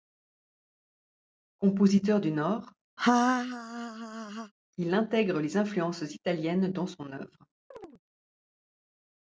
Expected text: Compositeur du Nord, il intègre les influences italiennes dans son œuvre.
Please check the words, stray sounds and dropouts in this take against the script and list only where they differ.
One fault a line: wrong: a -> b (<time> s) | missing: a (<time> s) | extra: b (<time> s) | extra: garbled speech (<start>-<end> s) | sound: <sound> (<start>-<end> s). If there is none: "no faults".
sound: laugh (3.0-4.5 s)
sound: chirp (7.7-8.0 s)